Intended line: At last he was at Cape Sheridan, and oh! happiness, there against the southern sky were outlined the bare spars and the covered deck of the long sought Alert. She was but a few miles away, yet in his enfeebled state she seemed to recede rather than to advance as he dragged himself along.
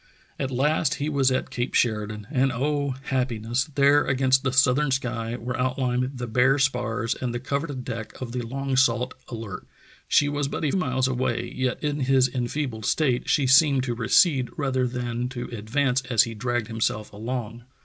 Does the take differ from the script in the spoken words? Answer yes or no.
yes